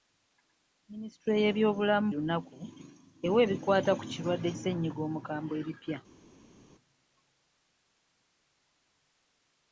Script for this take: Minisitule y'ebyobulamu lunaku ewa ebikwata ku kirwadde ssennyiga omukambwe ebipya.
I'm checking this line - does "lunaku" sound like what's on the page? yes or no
yes